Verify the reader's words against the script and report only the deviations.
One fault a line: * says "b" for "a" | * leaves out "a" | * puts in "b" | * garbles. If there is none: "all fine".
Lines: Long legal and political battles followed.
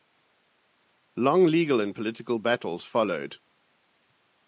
all fine